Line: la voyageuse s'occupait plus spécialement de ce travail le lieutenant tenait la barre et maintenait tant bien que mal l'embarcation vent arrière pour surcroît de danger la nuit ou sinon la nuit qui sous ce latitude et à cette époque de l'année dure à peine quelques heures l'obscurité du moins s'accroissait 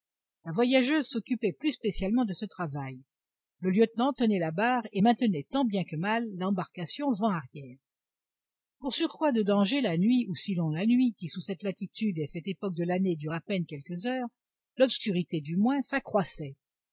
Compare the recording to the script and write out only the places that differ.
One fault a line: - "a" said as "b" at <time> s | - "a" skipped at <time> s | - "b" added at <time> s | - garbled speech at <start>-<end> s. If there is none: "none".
- "ce" said as "cette" at 11.4 s